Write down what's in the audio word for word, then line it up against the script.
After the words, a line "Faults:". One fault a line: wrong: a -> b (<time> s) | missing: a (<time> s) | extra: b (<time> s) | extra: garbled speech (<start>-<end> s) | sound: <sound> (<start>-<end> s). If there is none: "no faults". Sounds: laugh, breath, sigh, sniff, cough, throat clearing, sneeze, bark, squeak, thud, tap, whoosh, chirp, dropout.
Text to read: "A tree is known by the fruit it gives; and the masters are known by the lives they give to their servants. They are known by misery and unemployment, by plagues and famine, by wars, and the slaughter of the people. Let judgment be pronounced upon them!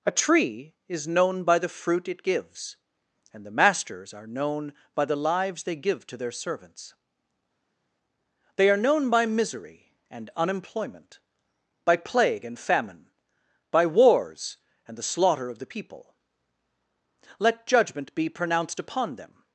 "A tree is known by the fruit it gives; and the masters are known by the lives they give to their servants. They are known by misery and unemployment, by plague and famine, by wars, and the slaughter of the people. Let judgment be pronounced upon them!
Faults:
wrong: plagues -> plague (12.0 s)